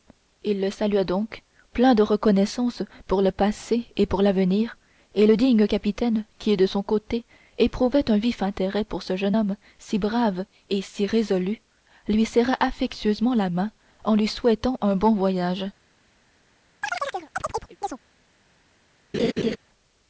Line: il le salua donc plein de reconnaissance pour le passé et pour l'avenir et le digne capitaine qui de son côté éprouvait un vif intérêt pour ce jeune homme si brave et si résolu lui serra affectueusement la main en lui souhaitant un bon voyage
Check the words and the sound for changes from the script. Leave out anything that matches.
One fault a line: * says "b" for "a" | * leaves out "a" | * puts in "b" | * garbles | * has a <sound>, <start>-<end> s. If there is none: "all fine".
* has a chirp, 16.8-18.0 s
* has a laugh, 19.1-19.6 s